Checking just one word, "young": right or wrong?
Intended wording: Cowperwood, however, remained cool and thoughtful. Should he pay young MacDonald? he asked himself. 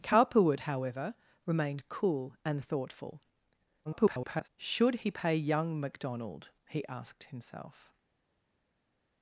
right